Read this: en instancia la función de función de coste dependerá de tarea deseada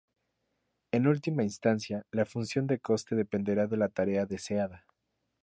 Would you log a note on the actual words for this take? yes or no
yes